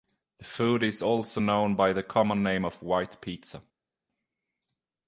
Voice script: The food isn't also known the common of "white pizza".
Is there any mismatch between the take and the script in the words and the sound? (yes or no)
yes